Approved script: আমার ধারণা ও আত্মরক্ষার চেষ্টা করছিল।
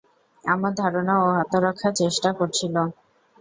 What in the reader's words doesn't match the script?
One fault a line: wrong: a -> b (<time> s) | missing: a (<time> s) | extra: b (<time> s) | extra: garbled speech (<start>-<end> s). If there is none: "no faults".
no faults